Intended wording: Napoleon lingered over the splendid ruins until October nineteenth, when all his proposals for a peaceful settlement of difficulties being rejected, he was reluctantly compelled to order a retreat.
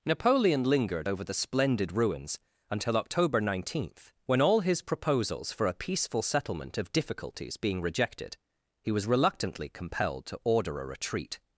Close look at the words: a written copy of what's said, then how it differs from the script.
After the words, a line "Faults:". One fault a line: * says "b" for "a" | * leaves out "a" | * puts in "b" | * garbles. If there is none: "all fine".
Napoleon lingered over the splendid ruins until October nineteenth, when all his proposals for a peaceful settlement of difficulties being rejected, he was reluctantly compelled to order a retreat.
Faults:
all fine